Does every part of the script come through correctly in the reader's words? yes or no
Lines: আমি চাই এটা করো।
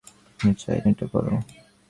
yes